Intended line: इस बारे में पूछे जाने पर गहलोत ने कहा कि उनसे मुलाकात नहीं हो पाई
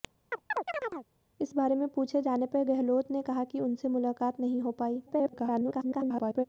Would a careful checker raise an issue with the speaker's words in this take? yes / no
yes